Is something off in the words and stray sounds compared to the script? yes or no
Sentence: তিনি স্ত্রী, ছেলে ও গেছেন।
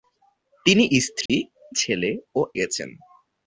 yes